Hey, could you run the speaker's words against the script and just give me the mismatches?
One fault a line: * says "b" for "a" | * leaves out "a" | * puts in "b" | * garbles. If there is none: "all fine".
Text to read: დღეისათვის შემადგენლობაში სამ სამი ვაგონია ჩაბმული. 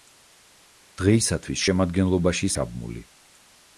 * leaves out "სამ სამი ვაგონია"